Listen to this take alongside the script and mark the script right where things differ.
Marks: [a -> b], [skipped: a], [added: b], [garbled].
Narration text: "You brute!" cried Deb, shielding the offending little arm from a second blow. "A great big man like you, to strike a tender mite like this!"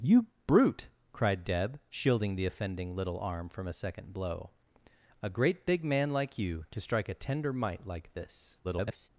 "You brute!" cried Deb, shielding the offending little arm from a second blow. "A great big man like you, to strike a tender mite like this!" [garbled]